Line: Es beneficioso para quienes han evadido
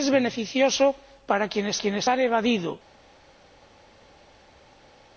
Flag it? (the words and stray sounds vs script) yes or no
yes